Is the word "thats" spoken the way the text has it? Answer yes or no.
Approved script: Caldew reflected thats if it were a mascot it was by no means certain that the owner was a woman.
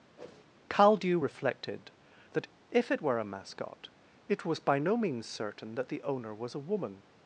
no